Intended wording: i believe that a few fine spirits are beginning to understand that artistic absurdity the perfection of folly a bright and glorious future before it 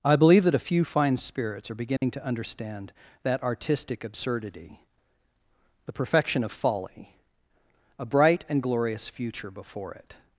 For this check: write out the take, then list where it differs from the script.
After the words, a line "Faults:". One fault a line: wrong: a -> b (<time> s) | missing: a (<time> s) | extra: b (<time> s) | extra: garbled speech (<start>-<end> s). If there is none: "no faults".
i believe that a few fine spirits are beginning to understand that artistic absurdity the perfection of folly a bright and glorious future before it
Faults:
no faults